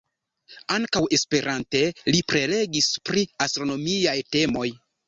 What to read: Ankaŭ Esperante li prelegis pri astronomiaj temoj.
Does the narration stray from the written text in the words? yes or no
no